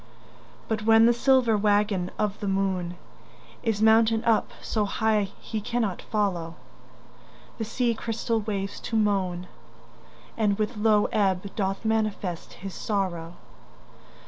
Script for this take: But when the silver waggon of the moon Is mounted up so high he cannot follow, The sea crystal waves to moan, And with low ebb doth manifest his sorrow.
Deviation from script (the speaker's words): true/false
false